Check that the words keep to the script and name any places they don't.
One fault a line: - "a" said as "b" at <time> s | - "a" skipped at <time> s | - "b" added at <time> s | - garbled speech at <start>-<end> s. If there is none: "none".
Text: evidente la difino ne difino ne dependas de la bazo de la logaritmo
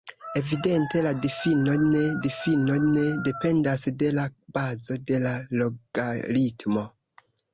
none